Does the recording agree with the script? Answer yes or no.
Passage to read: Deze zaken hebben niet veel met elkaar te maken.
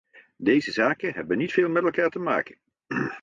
yes